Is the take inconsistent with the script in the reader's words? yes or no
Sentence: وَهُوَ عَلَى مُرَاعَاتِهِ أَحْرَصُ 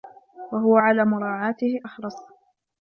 no